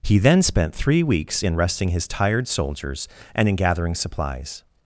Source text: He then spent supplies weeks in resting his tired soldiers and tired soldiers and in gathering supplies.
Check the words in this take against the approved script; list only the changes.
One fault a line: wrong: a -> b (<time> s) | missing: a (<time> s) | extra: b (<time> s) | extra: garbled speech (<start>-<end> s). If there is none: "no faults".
wrong: supplies -> three (0.7 s)
missing: tired soldiers and (3.5 s)